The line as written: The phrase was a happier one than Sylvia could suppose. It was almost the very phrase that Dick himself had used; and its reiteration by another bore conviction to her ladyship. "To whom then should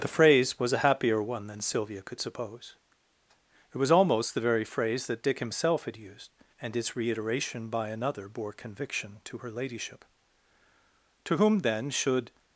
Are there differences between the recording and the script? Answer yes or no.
no